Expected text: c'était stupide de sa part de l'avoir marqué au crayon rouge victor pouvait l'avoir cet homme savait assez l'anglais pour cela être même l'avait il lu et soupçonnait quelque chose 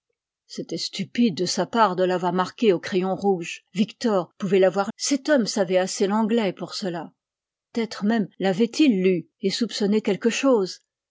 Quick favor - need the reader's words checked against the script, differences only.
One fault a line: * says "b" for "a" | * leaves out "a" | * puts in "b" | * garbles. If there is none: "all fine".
all fine